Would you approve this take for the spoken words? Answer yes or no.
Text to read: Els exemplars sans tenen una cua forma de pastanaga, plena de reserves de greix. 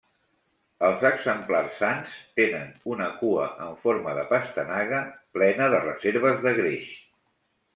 no